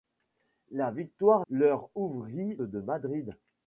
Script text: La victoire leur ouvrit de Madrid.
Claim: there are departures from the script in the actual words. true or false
false